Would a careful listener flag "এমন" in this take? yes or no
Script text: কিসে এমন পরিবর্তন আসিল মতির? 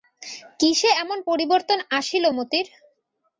no